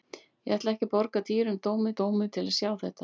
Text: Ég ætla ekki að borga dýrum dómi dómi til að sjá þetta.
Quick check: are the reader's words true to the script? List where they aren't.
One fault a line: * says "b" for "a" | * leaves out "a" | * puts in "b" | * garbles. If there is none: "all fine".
all fine